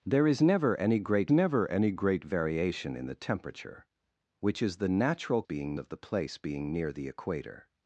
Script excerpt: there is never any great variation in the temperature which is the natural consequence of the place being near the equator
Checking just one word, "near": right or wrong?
right